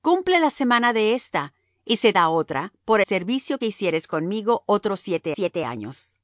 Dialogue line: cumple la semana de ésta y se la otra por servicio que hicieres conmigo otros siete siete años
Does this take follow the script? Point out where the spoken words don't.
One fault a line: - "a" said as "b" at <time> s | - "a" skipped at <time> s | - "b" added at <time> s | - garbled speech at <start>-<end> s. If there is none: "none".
none